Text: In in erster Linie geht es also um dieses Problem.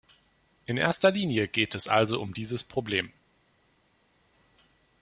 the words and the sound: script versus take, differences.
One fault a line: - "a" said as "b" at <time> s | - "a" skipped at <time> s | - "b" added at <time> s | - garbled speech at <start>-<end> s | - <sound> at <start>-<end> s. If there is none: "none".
- "in" skipped at 0.8 s